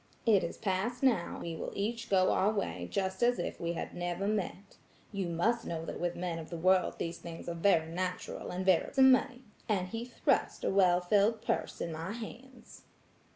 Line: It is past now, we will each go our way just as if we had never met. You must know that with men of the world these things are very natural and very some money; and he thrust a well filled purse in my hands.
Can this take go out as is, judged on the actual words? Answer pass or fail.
pass